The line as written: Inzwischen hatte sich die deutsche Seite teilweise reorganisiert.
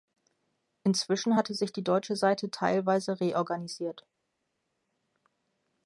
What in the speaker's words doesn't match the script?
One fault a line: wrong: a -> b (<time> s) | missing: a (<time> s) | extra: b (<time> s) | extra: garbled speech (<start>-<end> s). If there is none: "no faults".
no faults